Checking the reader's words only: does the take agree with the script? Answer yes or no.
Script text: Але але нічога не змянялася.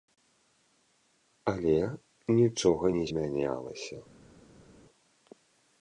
no